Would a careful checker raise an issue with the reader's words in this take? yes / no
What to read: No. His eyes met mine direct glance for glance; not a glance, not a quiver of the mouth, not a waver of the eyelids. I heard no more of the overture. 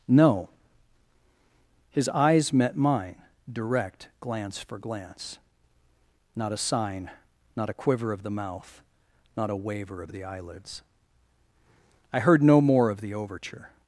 yes